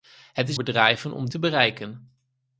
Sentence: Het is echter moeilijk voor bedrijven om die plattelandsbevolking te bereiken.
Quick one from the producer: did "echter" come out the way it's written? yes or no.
no